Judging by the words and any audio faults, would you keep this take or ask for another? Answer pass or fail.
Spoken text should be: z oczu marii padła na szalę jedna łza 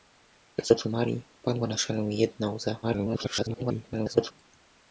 fail